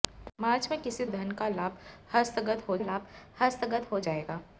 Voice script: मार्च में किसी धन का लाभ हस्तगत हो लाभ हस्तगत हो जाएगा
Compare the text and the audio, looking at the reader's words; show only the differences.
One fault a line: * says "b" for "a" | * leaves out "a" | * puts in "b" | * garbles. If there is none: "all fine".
all fine